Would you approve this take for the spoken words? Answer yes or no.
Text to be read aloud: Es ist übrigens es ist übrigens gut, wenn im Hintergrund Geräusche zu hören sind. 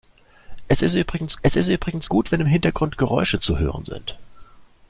yes